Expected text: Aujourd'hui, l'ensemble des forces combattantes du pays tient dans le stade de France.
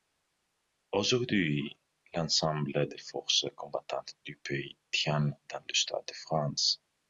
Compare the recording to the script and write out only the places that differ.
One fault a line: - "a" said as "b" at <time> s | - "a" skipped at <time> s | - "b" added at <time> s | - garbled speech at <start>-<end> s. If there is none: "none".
none